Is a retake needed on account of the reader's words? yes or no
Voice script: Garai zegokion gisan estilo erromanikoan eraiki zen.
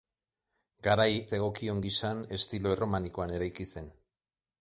no